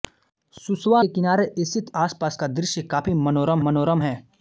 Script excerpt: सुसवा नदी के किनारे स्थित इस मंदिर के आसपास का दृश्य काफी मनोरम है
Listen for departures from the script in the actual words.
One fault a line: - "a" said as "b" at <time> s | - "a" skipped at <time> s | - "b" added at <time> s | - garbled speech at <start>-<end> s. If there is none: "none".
- "नदी" skipped at 1.0 s
- "इस मंदिर के" skipped at 1.9 s
- "मनोरम" added at 3.6 s